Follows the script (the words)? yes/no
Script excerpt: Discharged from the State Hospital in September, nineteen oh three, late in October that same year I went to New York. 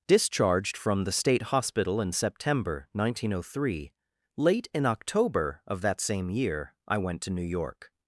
no